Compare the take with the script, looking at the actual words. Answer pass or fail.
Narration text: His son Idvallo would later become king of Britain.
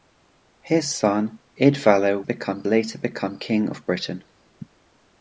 fail